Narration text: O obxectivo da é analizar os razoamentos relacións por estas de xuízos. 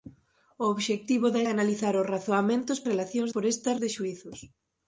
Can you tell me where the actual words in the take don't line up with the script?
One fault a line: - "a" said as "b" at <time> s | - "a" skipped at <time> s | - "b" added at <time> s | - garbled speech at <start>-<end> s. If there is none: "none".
none